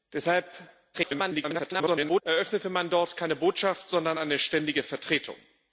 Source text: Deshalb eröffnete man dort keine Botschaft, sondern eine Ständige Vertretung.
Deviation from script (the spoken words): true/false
true